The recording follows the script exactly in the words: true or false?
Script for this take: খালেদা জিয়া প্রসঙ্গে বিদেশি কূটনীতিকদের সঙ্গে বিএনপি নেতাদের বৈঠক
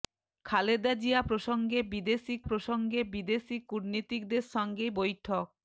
false